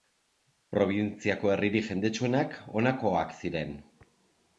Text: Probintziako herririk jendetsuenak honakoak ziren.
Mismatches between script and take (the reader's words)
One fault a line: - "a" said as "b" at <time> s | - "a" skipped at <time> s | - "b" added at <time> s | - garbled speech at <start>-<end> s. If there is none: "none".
none